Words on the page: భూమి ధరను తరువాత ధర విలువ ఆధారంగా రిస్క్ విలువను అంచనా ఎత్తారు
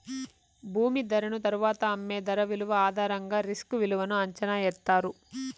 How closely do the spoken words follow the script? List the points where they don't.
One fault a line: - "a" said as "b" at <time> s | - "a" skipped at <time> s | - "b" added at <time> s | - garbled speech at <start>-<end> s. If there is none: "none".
- "అమ్మే" added at 1.9 s